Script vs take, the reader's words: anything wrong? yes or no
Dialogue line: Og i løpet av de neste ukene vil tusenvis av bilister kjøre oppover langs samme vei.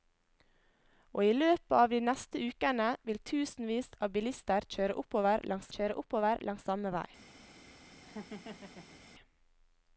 yes